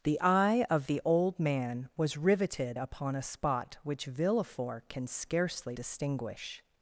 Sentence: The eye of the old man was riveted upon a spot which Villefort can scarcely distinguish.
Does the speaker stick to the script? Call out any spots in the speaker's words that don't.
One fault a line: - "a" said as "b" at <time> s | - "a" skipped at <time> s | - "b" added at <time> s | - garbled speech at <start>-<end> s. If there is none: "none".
none